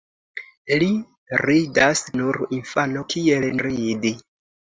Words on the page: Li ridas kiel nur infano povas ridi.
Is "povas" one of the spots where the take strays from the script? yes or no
yes